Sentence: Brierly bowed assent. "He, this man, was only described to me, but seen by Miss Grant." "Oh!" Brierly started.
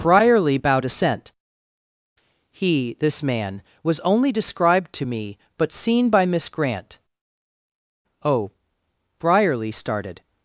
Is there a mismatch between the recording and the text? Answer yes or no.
no